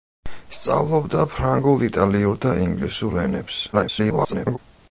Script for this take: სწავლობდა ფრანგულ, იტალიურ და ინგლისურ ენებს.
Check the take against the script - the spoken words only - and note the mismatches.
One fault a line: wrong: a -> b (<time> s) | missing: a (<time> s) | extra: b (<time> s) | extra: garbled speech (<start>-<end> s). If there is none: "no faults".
extra: garbled speech (3.7-4.6 s)